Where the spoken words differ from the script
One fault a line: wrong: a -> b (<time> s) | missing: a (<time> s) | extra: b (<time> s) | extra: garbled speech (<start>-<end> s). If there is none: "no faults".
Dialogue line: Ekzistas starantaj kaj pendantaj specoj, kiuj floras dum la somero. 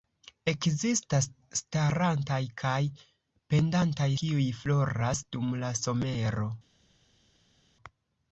missing: specoj (4.1 s)